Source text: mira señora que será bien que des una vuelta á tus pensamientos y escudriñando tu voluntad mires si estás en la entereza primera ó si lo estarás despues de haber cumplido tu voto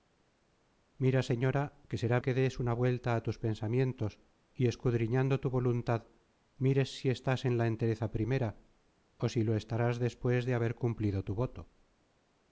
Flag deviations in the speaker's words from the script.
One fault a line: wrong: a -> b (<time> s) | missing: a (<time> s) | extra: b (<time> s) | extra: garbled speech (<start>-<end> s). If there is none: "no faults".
missing: bien (2.2 s)